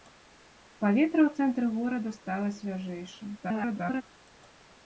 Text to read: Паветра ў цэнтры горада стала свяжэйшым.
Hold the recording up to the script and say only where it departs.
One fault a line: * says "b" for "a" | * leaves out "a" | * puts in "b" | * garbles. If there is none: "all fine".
* garbles